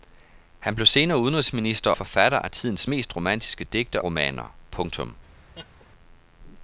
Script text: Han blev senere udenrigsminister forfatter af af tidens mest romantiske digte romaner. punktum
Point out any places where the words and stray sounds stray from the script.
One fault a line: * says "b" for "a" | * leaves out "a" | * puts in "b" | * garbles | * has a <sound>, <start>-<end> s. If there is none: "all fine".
* has a laugh, 5.5-5.9 s